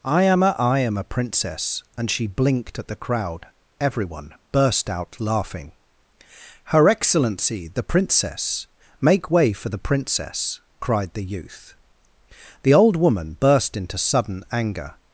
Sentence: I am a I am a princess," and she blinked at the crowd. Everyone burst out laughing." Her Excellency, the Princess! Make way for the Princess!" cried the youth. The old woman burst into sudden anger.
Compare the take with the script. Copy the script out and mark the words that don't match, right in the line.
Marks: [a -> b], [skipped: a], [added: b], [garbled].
I am a I am a princess," and she blinked at the crowd. Everyone burst out laughing." Her Excellency, the Princess! Make way for the Princess!" cried the youth. The old woman burst into sudden anger.